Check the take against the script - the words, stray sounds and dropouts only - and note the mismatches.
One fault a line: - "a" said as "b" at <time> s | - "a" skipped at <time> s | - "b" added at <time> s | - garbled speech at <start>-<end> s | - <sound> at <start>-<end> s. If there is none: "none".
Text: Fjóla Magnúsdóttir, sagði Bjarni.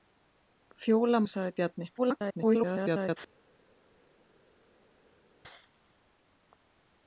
- "Magnúsdóttir" skipped at 1.2 s
- garbled speech at 2.0-3.2 s